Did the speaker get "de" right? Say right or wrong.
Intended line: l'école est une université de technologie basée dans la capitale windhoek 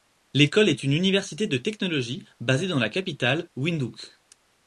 right